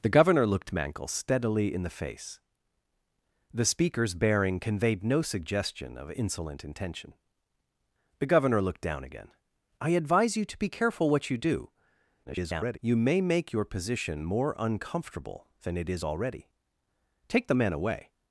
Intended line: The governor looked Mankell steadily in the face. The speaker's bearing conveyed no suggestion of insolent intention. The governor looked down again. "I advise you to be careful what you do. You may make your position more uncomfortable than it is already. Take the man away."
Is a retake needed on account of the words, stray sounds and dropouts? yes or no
yes